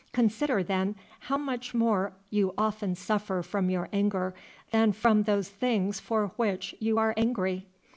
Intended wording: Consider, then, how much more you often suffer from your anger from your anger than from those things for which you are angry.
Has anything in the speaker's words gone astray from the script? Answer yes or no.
yes